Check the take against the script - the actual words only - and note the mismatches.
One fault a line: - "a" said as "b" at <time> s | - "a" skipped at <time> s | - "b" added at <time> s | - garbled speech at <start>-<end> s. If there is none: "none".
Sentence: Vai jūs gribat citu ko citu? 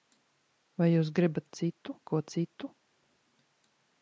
none